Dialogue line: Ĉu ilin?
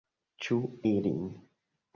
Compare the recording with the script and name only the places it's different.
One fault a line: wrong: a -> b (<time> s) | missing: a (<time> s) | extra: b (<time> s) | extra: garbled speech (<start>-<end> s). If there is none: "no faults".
no faults